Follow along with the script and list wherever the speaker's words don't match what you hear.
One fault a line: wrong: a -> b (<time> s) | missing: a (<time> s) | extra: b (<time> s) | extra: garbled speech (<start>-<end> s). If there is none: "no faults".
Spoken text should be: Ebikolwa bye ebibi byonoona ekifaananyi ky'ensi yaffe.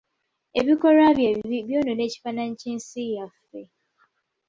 no faults